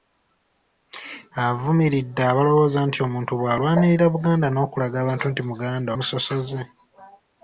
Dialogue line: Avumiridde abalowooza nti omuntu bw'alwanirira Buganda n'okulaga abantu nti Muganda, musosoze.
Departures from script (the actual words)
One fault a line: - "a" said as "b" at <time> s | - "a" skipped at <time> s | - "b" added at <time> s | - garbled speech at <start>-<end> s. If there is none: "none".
none